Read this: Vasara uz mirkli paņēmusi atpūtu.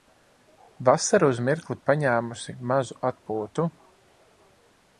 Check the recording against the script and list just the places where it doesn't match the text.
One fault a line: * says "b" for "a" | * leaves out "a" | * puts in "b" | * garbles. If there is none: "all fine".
* puts in "mazu"